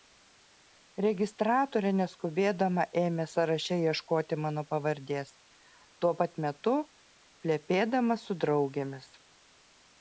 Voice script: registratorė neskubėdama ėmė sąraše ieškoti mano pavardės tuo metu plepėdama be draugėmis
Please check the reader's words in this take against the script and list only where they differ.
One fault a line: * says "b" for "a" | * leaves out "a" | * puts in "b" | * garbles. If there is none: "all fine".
* puts in "pat"
* says "su" for "be"